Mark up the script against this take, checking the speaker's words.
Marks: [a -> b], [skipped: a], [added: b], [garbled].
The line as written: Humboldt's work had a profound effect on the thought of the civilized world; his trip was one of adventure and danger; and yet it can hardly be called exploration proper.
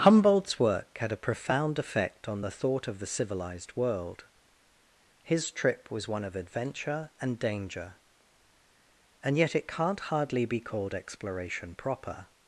Humboldt's work had a profound effect on the thought of the civilized world; his trip was one of adventure and danger; and yet it [can -> can't] hardly be called exploration proper.